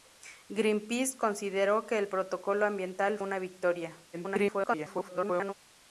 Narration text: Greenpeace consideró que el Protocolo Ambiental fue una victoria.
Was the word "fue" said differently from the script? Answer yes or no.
yes